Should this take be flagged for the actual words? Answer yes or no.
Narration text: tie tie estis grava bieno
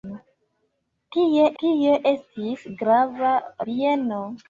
no